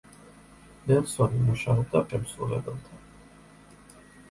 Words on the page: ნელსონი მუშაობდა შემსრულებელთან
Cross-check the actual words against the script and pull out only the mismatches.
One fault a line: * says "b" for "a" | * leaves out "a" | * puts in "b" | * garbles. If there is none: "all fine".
all fine